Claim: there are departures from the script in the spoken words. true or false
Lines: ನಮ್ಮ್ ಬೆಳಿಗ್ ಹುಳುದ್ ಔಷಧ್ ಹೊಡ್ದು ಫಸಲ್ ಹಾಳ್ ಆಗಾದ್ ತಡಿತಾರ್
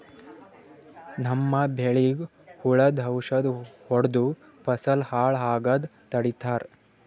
false